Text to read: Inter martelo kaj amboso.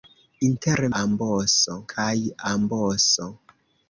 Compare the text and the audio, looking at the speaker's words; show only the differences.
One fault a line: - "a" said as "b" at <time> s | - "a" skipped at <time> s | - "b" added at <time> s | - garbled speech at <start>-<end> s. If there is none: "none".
- "martelo" said as "amboso" at 1.0 s